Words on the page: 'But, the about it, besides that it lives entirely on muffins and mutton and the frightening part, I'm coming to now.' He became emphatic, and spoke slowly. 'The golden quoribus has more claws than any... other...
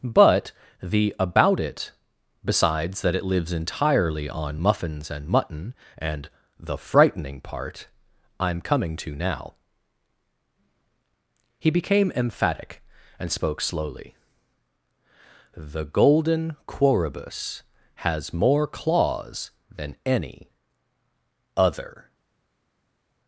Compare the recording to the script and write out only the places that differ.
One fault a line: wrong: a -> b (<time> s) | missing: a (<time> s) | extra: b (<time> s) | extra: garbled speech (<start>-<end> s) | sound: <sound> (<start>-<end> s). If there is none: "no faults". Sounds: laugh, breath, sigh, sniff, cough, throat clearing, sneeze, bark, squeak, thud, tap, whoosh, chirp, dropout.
no faults